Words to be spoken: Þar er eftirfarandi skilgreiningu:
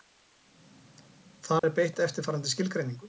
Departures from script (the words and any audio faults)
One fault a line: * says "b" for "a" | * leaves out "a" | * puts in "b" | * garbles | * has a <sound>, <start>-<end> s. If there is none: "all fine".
* has a dropout, 1.6-1.6 s
* puts in "beitt"